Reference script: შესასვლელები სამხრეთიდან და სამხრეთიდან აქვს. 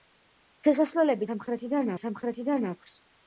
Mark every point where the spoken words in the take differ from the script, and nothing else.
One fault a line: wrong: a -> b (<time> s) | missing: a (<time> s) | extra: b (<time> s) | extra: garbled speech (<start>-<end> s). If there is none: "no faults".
no faults